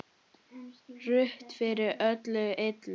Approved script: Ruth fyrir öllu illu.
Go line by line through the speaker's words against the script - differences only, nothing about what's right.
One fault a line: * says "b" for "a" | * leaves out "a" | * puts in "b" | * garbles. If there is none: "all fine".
all fine